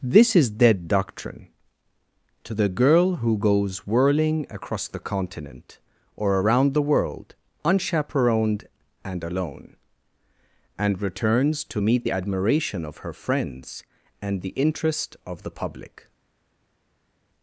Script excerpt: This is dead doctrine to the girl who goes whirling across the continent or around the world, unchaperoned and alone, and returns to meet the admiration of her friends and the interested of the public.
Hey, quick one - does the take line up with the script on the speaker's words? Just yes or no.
no